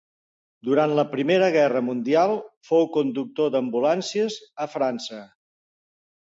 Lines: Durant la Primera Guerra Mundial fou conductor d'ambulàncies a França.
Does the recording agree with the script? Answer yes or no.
yes